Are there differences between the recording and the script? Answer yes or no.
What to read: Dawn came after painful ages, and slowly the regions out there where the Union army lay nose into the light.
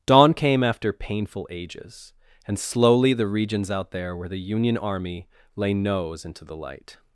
no